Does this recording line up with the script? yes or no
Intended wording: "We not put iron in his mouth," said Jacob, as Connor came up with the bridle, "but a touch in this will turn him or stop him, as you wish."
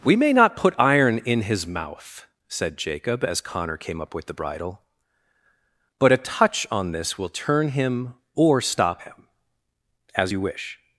no